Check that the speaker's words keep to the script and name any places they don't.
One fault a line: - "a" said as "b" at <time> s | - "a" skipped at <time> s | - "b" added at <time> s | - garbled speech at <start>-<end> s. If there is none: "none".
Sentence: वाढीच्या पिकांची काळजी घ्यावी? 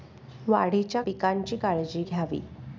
none